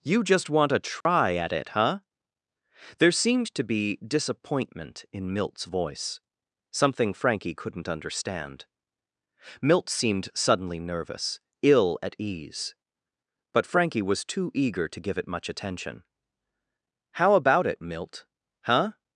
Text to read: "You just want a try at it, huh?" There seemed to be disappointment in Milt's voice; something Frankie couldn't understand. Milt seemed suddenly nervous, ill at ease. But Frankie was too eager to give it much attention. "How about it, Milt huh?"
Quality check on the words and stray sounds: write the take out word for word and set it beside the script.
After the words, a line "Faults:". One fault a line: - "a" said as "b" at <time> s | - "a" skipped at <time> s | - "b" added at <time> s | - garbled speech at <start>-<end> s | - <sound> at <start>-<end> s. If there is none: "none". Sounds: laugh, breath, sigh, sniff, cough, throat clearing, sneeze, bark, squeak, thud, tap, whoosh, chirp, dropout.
"You just want a try at it, huh?" There seemed to be disappointment in Milt's voice; something Frankie couldn't understand. Milt seemed suddenly nervous, ill at ease. But Frankie was too eager to give it much attention. "How about it, Milt huh?"
Faults:
- dropout at 1.0-1.1 s